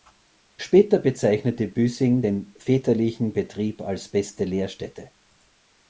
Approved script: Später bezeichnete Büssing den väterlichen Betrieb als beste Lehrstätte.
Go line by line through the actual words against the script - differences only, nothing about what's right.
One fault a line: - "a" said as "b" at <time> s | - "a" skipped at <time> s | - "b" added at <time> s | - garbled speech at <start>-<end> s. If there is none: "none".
none